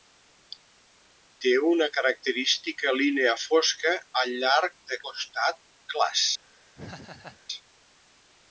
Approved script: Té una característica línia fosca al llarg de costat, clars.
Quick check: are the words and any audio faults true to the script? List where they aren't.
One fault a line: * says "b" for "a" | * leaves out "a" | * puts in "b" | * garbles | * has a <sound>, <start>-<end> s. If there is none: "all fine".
* has a laugh, 6.7-7.4 s